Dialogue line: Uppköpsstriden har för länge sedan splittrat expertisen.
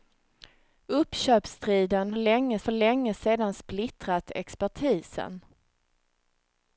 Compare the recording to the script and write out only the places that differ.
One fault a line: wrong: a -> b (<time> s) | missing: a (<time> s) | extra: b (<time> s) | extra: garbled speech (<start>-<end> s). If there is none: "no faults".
wrong: har -> länge (2.2 s)